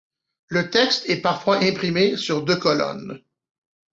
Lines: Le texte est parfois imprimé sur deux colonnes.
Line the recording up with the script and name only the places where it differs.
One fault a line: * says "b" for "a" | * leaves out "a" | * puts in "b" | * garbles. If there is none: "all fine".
all fine